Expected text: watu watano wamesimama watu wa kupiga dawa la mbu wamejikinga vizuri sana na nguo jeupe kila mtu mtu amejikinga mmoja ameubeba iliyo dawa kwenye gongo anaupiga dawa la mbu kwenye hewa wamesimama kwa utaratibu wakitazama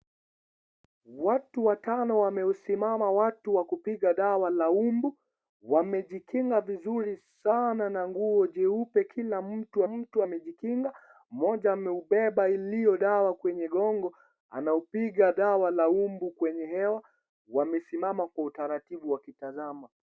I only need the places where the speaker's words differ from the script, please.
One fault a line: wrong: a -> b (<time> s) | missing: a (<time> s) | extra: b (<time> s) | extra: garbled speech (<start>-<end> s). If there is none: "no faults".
no faults